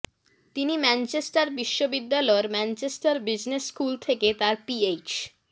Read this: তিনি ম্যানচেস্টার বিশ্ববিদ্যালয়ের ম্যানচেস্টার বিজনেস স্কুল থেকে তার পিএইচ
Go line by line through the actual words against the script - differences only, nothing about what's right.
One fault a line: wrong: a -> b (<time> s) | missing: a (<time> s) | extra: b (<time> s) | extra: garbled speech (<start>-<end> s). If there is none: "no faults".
no faults